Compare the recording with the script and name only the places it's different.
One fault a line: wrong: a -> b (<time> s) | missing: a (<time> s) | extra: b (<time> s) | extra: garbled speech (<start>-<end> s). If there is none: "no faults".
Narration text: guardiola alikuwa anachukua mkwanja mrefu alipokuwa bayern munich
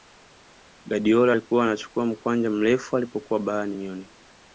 no faults